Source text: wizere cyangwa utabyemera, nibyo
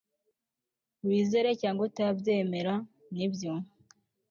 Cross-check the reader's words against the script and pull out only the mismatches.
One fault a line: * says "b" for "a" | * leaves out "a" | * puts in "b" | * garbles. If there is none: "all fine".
all fine